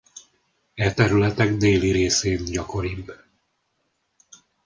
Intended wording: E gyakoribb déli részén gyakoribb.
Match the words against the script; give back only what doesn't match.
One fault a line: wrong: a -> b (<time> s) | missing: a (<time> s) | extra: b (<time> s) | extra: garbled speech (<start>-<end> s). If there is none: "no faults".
wrong: gyakoribb -> területek (0.9 s)